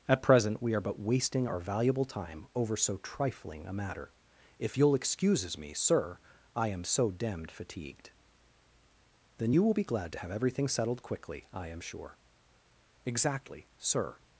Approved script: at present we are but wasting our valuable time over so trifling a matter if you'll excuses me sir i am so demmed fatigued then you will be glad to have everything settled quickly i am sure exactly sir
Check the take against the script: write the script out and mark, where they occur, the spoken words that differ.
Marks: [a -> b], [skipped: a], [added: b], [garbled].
at present we are but wasting our valuable time over so trifling a matter if you'll excuses me sir i am so demmed fatigued then you will be glad to have everything settled quickly i am sure exactly sir